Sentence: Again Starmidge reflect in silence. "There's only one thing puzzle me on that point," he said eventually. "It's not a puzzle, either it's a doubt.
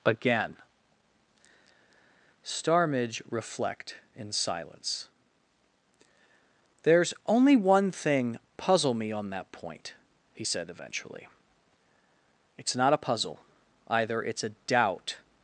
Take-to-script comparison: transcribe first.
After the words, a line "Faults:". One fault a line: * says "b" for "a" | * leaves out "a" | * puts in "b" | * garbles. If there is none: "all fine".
Again Starmidge reflect in silence. "There's only one thing puzzle me on that point," he said eventually. "It's not a puzzle, either it's a doubt.
Faults:
all fine